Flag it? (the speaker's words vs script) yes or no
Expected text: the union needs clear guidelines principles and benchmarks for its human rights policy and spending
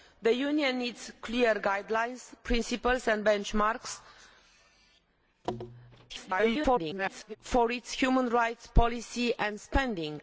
yes